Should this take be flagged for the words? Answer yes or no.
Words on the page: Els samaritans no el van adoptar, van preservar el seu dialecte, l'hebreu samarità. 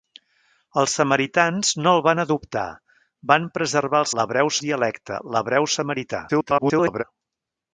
yes